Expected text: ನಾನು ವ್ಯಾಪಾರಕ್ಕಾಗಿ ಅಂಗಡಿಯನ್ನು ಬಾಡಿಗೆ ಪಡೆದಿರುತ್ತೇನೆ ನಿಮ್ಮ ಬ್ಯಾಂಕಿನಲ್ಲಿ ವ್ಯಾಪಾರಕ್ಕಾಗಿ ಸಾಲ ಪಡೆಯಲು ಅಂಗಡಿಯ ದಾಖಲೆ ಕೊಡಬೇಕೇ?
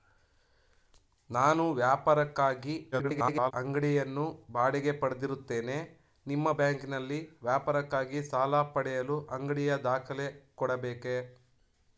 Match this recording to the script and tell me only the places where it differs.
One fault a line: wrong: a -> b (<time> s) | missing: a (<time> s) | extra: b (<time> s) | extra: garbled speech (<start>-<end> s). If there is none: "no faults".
extra: garbled speech (2.9-3.5 s)